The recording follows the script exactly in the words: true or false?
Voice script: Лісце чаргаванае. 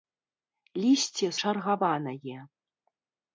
true